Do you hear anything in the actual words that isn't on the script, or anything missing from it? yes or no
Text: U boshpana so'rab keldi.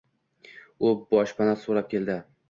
no